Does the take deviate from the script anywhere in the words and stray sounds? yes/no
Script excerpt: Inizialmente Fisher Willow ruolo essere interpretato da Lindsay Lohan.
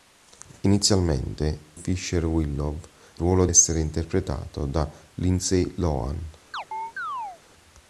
yes